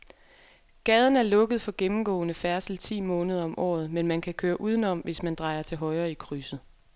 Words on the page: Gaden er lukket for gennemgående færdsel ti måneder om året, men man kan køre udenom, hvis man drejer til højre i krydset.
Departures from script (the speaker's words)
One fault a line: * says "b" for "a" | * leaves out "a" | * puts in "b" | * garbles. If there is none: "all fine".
all fine